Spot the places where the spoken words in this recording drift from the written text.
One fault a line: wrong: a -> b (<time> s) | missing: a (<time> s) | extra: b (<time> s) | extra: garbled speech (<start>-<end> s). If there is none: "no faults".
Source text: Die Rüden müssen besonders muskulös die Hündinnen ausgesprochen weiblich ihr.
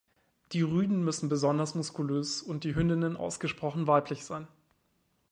extra: und (2.4 s)
wrong: ihr -> sein (4.2 s)